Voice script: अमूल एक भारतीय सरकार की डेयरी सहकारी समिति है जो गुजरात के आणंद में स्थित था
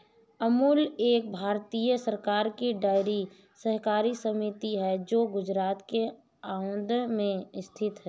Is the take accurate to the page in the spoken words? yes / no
no